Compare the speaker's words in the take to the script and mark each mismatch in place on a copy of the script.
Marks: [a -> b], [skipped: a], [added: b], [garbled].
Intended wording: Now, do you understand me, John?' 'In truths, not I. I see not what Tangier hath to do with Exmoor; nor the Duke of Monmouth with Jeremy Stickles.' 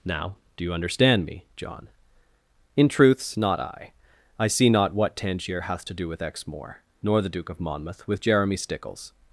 Now, do you understand me, John?' 'In truths, not I. I see not what Tangier hath to do with Exmoor; nor the Duke of Monmouth with Jeremy Stickles.'